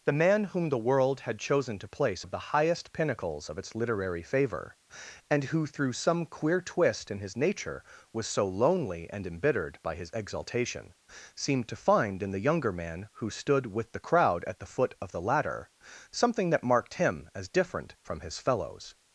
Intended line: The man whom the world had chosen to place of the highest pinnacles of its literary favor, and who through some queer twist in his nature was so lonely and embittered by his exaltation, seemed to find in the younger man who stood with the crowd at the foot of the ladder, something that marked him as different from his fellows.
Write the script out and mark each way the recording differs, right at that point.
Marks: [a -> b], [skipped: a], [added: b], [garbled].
The man whom the world had chosen to place of the highest pinnacles of its literary favor, and who through some queer twist in his nature was so lonely and embittered by his exaltation, seemed to find in the younger man who stood with the crowd at the foot of the ladder, something that marked him as different from his fellows.